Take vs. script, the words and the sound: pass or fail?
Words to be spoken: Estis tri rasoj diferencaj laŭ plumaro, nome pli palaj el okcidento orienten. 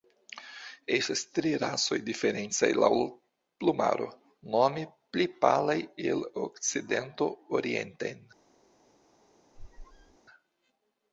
fail